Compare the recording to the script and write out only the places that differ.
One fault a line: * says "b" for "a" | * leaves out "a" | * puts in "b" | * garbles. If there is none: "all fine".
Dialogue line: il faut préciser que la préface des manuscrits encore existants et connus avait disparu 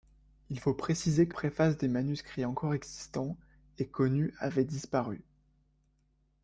* leaves out "la"